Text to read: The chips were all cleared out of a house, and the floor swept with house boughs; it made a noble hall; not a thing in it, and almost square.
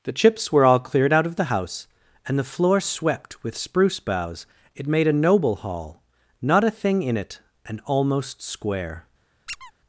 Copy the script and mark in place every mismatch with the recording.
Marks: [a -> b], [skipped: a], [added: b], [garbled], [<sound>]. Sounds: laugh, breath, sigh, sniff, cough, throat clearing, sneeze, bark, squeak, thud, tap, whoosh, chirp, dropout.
The chips were all cleared out of [a -> the] house, and the floor swept with [house -> spruce] boughs; it made a noble hall; not a thing in it, and almost square. [squeak]